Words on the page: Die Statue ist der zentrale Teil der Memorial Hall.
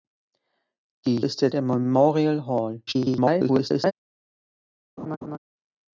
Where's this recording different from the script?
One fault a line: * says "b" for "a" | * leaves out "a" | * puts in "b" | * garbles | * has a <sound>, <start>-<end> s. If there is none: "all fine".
* leaves out "Statue"
* leaves out "zentrale Teil"
* garbles
* has a laugh, 5.0-5.4 s